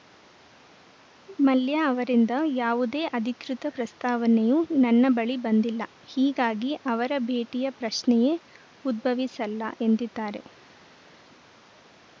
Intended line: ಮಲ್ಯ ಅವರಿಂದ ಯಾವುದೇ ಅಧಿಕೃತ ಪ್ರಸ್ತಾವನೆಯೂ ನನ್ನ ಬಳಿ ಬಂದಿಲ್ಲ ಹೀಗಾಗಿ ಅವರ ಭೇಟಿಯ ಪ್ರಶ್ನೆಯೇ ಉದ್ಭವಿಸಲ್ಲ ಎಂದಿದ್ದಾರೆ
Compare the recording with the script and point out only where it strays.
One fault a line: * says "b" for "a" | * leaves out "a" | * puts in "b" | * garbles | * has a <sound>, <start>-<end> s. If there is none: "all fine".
all fine